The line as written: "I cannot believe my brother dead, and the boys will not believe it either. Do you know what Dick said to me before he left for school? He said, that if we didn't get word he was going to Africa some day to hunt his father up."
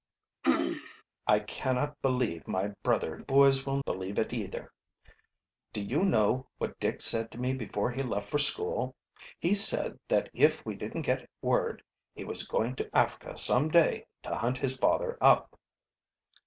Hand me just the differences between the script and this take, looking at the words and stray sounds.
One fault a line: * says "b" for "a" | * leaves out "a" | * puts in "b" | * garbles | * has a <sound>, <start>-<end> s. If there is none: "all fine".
* has a throat clearing, 0.4-1.0 s
* leaves out "dead and"
* leaves out "not"